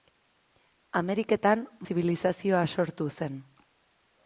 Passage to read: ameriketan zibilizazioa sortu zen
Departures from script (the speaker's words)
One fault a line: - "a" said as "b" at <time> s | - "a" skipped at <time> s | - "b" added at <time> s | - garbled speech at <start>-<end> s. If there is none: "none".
none